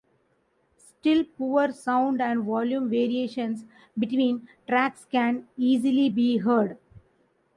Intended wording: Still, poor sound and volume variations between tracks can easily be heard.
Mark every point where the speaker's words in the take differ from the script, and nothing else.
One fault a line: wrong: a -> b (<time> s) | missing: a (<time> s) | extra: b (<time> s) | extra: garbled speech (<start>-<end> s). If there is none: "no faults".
no faults